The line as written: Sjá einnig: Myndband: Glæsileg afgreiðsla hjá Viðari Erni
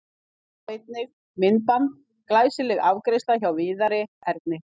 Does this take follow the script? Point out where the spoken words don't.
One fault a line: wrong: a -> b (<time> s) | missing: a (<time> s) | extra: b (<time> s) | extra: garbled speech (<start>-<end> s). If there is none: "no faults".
no faults